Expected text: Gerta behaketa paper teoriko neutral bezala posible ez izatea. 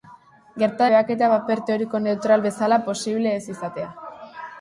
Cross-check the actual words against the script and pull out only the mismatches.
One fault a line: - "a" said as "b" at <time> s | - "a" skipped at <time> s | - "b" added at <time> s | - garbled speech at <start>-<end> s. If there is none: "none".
none